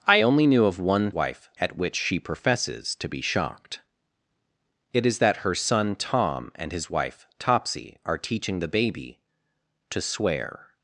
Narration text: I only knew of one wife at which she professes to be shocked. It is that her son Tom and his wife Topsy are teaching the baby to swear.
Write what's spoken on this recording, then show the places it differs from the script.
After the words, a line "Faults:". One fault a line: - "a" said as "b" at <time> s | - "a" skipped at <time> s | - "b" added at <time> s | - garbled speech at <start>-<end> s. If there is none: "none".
I only knew of one wife at which she professes to be shocked. It is that her son Tom and his wife Topsy are teaching the baby to swear.
Faults:
none